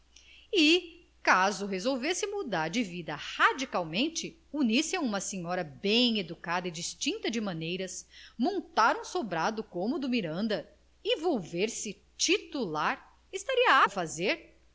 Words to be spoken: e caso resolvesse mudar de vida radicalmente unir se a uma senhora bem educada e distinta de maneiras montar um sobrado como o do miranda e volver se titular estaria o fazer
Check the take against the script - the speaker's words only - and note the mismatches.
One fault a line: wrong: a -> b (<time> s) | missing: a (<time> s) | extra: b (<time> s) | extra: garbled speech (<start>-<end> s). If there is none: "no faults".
no faults